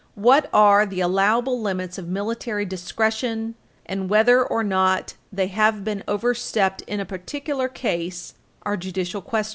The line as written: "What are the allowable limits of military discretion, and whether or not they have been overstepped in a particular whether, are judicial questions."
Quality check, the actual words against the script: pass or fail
fail